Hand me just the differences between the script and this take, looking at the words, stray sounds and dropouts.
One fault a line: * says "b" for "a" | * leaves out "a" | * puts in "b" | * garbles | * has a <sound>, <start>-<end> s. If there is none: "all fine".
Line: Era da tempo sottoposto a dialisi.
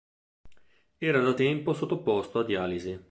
all fine